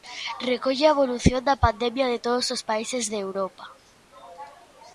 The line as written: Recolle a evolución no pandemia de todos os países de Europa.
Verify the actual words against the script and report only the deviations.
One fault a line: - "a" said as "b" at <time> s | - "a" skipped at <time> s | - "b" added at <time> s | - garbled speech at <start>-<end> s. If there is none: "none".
- "no" said as "da" at 1.5 s